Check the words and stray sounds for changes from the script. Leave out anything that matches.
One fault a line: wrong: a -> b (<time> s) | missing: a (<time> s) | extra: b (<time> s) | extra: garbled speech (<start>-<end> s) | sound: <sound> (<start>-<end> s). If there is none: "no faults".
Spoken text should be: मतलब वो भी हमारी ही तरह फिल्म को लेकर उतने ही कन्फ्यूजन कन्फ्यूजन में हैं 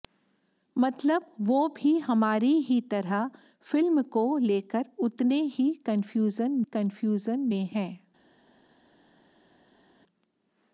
no faults